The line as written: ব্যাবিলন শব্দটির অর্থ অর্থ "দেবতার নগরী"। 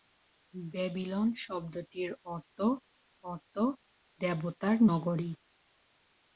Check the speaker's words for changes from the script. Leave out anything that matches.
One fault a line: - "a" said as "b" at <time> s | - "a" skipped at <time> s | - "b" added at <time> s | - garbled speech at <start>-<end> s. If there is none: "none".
none